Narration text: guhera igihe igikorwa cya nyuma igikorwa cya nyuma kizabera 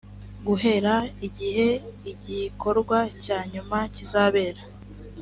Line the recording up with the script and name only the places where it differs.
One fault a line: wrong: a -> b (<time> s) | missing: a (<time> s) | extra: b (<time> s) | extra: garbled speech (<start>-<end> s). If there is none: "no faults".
missing: igikorwa cya nyuma (3.8 s)